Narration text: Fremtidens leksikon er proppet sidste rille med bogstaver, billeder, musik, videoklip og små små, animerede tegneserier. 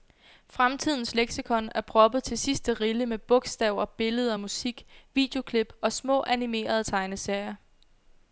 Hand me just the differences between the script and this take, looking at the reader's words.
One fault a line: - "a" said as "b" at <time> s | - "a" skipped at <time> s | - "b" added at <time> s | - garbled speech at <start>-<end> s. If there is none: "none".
- "til" added at 2.2 s
- "små" skipped at 6.2 s